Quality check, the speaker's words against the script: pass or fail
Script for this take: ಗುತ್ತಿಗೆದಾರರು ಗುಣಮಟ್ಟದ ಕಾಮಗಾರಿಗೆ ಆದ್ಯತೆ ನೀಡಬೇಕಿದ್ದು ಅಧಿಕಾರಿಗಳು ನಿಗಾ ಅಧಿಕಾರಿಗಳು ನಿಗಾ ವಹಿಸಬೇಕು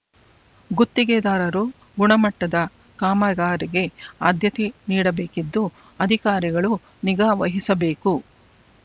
fail